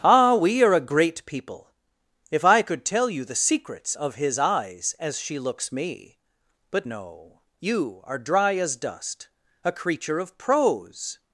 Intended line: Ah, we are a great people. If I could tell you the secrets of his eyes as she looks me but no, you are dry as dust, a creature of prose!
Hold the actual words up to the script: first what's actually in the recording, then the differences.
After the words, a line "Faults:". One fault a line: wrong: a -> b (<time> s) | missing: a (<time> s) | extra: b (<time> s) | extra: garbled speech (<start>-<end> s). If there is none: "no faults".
Ah, we are a great people. If I could tell you the secrets of his eyes as she looks me but no, you are dry as dust, a creature of prose!
Faults:
no faults